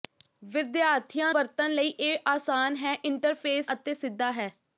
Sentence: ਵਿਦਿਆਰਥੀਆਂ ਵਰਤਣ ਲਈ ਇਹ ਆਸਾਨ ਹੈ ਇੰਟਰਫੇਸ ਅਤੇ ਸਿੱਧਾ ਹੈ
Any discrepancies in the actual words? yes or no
no